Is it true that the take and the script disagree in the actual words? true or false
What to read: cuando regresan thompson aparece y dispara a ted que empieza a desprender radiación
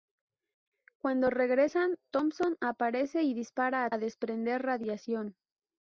true